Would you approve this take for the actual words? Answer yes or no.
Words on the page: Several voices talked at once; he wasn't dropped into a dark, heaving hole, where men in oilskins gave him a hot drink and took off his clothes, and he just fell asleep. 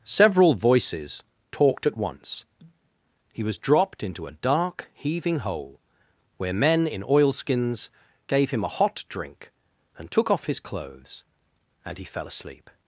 no